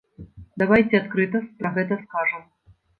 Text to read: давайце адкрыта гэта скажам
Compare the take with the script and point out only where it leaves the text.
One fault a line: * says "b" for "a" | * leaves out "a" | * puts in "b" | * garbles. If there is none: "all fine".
* puts in "пра"